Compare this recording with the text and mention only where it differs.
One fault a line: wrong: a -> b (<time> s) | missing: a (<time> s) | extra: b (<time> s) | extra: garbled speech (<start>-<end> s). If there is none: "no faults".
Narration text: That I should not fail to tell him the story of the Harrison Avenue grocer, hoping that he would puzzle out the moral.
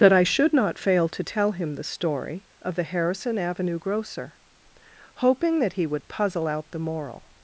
no faults